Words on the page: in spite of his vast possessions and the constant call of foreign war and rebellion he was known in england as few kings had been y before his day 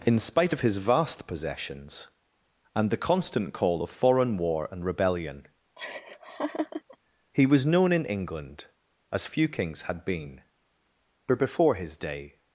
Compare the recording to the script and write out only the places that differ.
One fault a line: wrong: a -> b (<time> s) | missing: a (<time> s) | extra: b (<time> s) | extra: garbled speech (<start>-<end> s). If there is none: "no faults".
wrong: y -> but (10.9 s)